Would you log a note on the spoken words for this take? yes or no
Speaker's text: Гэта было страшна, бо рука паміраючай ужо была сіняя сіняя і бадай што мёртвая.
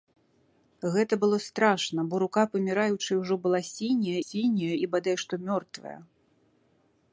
no